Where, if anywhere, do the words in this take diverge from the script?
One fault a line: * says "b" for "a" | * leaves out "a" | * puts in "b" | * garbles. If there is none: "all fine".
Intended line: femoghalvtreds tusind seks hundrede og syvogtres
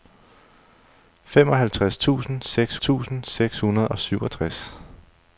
* puts in "tusind seks"